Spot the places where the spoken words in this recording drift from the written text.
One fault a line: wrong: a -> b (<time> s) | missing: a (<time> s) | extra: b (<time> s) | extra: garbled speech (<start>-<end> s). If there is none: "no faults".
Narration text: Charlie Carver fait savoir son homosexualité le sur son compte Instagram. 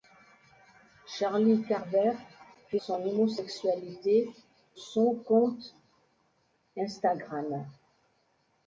missing: savoir (2.8 s)
missing: le sur (4.3 s)